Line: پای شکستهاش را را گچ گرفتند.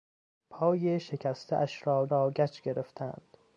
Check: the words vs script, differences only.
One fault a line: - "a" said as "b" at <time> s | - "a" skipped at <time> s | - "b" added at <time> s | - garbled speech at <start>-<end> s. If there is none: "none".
none